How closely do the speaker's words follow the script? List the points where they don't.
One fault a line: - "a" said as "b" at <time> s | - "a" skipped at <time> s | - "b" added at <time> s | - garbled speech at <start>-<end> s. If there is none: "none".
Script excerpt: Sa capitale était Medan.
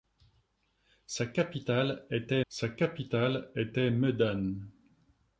- "sa capitale était" added at 2.5 s